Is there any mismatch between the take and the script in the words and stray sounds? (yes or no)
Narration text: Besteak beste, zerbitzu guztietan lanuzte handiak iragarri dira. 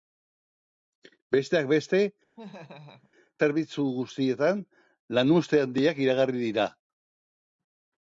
yes